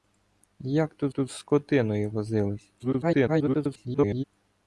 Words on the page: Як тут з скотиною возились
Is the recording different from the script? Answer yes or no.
yes